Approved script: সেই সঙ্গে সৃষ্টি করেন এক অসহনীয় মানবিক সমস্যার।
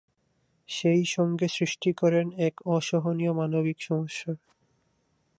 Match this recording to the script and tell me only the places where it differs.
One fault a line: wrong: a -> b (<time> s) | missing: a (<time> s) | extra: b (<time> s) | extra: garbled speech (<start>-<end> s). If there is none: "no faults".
no faults